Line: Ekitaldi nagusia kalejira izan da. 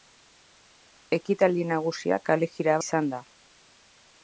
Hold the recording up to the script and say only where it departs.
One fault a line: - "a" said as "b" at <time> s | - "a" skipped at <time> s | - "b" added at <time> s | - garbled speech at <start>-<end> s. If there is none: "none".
none